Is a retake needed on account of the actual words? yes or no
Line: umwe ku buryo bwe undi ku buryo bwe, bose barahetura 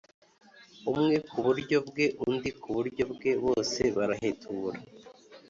no